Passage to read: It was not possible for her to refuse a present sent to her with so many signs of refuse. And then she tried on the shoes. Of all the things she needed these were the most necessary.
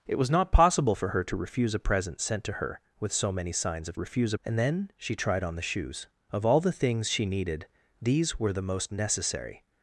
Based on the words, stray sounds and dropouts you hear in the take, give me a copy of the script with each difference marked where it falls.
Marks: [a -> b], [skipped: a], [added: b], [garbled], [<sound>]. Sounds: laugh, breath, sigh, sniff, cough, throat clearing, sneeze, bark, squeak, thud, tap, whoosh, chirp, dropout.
It was not possible for her to refuse a present sent to her with so many signs of refuse. And then she tried on the shoes. Of all the things she needed these were the most necessary.